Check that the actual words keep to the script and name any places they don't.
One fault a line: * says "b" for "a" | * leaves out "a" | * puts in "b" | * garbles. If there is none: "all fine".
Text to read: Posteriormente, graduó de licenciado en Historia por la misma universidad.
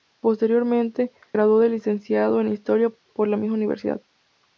all fine